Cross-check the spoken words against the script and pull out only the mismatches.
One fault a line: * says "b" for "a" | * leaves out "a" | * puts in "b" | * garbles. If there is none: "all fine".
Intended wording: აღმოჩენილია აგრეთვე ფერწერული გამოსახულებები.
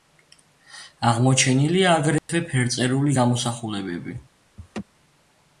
all fine